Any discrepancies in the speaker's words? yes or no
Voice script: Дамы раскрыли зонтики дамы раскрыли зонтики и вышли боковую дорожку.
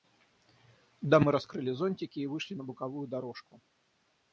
yes